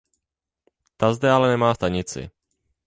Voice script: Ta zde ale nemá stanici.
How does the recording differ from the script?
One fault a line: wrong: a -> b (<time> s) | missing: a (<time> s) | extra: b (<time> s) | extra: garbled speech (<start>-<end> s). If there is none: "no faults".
no faults